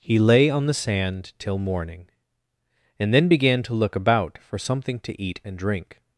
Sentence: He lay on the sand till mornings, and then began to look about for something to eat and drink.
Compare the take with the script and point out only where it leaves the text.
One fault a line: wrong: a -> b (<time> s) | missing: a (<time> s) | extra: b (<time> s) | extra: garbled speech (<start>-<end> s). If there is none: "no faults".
wrong: mornings -> morning (1.6 s)